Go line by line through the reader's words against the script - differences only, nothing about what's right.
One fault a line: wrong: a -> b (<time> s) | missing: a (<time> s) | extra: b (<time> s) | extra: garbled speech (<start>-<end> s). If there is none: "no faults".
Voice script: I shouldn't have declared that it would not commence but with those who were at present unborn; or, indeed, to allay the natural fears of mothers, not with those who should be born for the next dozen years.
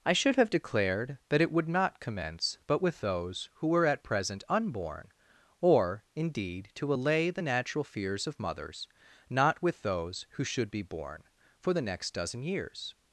wrong: shouldn't -> should (0.1 s)